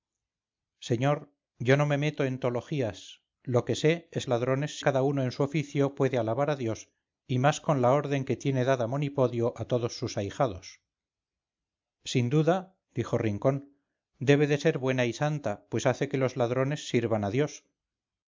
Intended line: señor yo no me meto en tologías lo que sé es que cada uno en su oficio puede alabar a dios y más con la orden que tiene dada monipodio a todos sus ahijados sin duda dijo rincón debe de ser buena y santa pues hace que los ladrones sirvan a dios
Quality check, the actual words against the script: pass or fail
fail